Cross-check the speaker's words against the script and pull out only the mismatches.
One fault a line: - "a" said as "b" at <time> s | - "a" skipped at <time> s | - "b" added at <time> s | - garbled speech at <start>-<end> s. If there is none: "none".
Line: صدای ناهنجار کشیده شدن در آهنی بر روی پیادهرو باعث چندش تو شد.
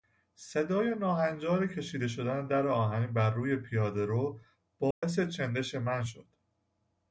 - "تو" said as "من" at 5.8 s